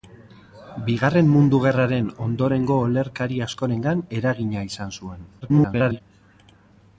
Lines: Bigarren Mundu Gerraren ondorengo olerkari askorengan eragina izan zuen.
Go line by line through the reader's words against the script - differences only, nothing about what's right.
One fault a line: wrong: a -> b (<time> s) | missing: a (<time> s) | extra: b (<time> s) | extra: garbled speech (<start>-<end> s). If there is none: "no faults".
extra: garbled speech (5.4-6.0 s)